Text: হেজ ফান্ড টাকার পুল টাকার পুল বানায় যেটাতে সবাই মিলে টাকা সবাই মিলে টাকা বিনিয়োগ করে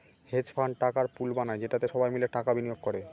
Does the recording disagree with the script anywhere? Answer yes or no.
yes